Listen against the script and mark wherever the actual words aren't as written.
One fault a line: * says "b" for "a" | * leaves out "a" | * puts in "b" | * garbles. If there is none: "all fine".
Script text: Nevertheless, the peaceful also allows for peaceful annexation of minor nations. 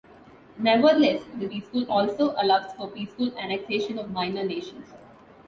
all fine